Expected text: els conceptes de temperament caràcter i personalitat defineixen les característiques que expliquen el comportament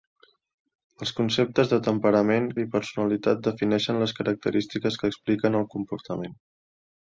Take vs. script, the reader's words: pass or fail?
fail